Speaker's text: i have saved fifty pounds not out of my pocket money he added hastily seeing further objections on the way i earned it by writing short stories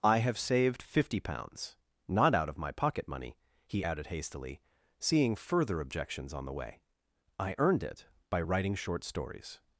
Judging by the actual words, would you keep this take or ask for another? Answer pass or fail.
pass